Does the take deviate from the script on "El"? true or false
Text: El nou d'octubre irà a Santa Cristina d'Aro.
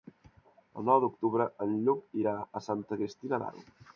false